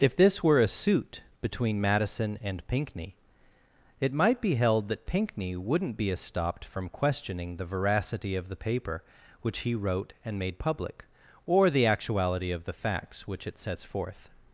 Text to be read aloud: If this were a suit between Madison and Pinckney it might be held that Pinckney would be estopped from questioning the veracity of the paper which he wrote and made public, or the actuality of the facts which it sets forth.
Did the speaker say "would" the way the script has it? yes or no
no